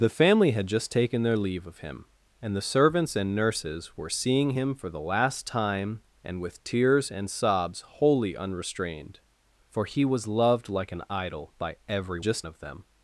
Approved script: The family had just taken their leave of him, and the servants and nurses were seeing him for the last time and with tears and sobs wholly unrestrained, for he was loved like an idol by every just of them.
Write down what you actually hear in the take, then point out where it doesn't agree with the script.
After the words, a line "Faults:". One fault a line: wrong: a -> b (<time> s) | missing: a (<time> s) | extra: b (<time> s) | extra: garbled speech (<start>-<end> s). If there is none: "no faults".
The family had just taken their leave of him, and the servants and nurses were seeing him for the last time and with tears and sobs wholly unrestrained, for he was loved like an idol by every just of them.
Faults:
no faults